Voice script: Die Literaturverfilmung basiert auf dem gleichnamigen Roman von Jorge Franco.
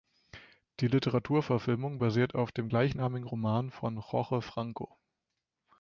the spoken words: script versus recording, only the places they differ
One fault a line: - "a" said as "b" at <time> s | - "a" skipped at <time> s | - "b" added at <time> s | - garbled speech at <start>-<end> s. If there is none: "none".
none